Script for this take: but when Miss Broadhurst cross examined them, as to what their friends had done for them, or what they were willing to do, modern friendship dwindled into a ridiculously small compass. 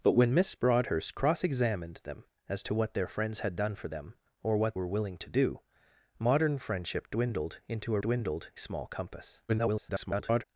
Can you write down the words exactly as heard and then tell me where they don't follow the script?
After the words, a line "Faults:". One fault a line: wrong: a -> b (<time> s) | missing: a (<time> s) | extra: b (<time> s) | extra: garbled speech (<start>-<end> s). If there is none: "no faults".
but when Miss Broadhurst cross examined them, as to what their friends had done for them, or what were willing to do, modern friendship dwindled into a dwindled small compass. [garbled]
Faults:
missing: they (4.8 s)
wrong: ridiculously -> dwindled (8.0 s)
extra: garbled speech (9.5-10.4 s)